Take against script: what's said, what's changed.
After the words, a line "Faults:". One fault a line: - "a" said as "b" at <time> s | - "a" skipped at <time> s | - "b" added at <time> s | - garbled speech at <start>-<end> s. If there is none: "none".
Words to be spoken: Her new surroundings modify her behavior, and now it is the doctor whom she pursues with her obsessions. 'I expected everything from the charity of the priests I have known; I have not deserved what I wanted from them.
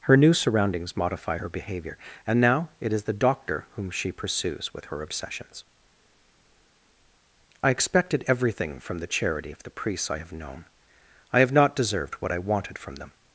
Her new surroundings modify her behavior, and now it is the doctor whom she pursues with her obsessions. 'I expected everything from the charity of the priests I have known; I have not deserved what I wanted from them.
Faults:
none